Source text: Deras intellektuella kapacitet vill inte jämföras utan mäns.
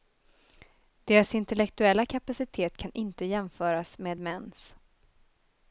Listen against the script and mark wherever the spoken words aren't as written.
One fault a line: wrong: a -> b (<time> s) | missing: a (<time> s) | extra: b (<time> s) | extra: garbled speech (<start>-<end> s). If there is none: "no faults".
wrong: vill -> kan (2.8 s)
wrong: utan -> med (4.0 s)